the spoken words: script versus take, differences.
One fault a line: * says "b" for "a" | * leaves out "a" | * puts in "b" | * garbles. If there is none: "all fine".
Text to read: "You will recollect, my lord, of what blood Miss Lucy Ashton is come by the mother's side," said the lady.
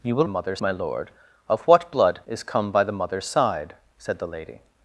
* says "mother's" for "recollect"
* leaves out "Miss Lucy Ashton"